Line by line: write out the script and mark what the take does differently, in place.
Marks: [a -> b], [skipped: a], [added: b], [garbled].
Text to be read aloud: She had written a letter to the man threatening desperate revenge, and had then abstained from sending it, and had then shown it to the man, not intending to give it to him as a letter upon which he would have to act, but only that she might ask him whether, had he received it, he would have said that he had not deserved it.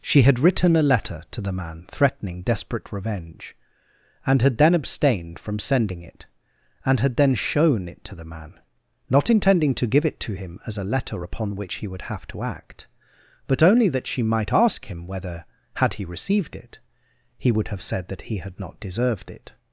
She had written a letter to the man threatening desperate revenge, and had then abstained from sending it, and had then shown it to the man, not intending to give it to him as a letter upon which he would have to act, but only that she might ask him whether, had he received it, he would have said that he had not deserved it.